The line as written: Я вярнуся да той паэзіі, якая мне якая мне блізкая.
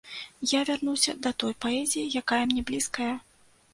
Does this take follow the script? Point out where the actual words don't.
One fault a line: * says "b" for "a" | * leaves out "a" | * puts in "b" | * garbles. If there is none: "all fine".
* leaves out "якая мне"